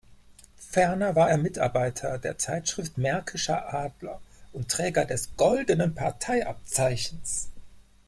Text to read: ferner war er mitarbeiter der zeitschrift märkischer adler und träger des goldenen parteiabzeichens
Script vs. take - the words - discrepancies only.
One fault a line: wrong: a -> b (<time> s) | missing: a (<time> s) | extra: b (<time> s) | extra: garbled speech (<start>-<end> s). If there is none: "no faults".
no faults